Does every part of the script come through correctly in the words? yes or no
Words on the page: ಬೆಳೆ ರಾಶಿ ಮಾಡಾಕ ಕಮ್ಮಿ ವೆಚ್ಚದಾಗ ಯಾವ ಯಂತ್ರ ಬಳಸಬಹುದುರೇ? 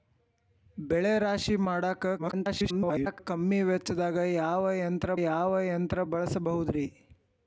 no